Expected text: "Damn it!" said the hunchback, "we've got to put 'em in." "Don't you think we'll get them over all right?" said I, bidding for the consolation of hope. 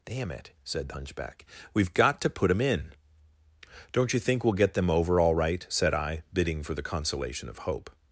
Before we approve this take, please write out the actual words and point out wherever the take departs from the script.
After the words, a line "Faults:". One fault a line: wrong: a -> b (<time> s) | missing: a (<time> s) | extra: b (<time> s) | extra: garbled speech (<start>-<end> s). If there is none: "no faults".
"Damn it!" said the hunchback, "we've got to put 'em in." "Don't you think we'll get them over all right?" said I, bidding for the consolation of hope.
Faults:
no faults